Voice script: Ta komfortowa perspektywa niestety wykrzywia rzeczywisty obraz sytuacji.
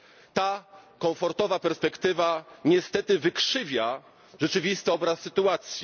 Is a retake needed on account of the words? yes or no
no